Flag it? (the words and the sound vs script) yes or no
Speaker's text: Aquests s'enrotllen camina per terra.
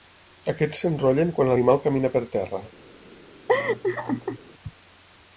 yes